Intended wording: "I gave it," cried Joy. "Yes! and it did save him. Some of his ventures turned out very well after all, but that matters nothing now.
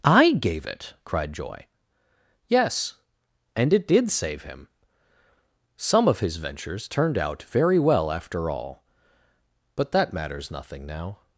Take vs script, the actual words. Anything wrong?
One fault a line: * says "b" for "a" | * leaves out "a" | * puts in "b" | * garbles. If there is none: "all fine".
all fine